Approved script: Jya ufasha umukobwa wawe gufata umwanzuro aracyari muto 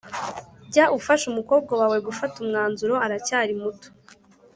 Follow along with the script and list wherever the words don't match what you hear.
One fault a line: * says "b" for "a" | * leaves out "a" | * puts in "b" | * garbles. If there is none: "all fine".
all fine